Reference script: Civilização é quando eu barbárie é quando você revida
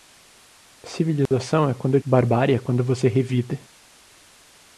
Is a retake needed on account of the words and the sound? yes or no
yes